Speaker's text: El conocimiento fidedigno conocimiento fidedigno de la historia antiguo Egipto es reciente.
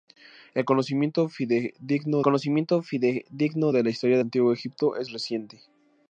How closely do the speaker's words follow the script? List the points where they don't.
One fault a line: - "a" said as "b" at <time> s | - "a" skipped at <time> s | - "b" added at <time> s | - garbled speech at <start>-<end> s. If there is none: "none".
none